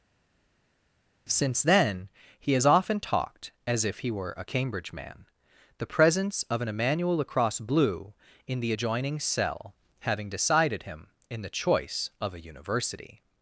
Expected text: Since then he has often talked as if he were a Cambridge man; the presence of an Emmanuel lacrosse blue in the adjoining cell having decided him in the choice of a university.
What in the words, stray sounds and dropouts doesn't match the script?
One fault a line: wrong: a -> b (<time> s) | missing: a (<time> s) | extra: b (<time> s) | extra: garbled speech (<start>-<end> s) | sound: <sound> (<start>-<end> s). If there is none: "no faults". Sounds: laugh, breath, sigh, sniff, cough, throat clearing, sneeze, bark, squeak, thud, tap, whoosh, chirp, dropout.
no faults